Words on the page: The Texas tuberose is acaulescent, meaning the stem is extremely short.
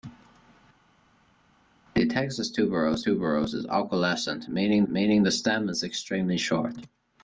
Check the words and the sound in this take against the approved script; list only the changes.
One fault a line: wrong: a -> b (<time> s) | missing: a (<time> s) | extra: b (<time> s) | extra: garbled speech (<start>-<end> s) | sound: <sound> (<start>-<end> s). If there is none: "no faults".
extra: tuberose (3.0 s)
extra: meaning (4.9 s)